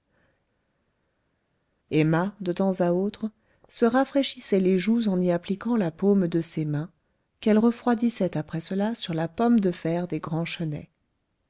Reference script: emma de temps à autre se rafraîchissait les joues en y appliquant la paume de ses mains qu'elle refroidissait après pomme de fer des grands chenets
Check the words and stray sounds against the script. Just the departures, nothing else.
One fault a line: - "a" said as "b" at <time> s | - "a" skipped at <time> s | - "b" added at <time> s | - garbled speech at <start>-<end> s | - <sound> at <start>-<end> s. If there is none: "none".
- "cela sur la" added at 8.6 s